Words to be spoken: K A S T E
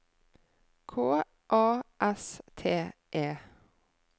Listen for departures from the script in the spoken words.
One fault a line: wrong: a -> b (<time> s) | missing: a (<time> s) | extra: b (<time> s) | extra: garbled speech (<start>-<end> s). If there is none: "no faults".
no faults